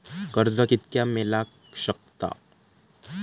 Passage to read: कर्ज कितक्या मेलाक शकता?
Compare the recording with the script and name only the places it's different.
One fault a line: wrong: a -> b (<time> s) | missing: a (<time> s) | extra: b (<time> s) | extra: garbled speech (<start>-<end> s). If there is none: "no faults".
no faults